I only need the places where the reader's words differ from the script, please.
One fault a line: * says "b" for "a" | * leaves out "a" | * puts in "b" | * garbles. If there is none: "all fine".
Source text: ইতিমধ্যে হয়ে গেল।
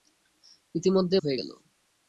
all fine